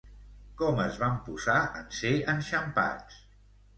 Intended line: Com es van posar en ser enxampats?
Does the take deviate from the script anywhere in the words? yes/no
no